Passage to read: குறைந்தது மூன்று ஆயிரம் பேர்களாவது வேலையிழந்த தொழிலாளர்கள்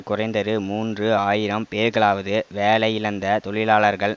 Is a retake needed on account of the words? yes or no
no